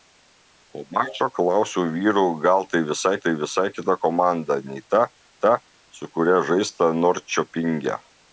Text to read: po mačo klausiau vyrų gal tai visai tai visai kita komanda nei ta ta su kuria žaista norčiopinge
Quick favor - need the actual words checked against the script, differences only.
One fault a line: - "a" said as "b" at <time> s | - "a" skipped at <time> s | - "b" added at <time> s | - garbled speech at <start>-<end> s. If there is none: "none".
none